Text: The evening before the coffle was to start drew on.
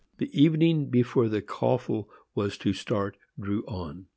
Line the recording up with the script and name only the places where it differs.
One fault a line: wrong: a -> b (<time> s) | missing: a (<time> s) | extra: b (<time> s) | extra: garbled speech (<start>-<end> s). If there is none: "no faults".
no faults